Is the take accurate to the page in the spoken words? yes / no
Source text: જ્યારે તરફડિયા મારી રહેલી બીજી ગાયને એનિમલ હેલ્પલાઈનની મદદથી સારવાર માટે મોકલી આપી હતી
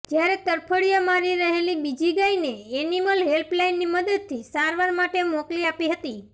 yes